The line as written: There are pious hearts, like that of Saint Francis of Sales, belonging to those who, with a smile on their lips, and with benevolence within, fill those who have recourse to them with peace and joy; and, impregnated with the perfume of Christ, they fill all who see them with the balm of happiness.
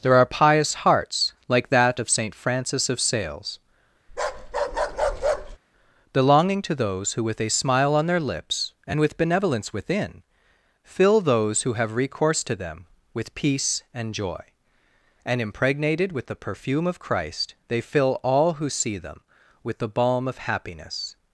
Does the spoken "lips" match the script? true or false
true